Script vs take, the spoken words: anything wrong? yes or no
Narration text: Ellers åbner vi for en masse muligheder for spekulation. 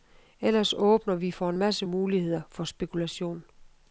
no